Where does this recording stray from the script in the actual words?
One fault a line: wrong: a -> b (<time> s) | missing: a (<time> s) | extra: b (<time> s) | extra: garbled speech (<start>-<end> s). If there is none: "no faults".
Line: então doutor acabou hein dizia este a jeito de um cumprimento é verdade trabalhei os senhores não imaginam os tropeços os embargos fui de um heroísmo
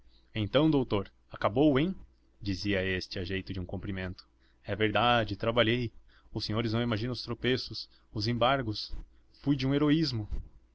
no faults